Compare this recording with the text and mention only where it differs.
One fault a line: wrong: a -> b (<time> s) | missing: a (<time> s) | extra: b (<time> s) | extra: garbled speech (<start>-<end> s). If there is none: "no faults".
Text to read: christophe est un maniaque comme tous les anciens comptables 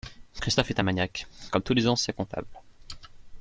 no faults